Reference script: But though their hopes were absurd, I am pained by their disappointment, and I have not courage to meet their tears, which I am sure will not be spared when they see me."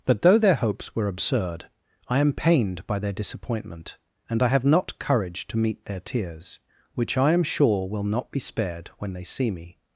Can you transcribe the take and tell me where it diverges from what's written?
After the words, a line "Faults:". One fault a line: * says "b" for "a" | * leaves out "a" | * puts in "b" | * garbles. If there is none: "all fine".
But though their hopes were absurd, I am pained by their disappointment, and I have not courage to meet their tears, which I am sure will not be spared when they see me."
Faults:
all fine